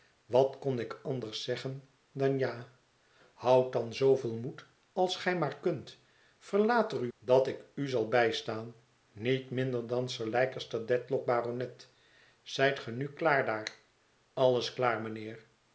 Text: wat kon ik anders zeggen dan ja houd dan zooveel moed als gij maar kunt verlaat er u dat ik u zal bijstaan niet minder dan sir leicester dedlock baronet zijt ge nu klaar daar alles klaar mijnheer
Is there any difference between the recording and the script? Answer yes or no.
no